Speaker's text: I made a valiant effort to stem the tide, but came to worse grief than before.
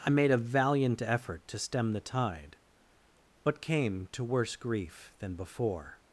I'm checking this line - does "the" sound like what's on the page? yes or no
yes